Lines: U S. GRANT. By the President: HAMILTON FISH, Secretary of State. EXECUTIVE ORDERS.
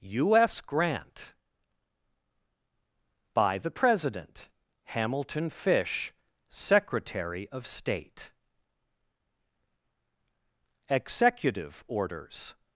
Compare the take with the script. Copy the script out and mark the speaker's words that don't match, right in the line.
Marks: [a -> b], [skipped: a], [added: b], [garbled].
U S. GRANT. By the President: HAMILTON FISH, Secretary of State. EXECUTIVE ORDERS.